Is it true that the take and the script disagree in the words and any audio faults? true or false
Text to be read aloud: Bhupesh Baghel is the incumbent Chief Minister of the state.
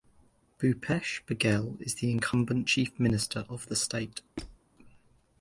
true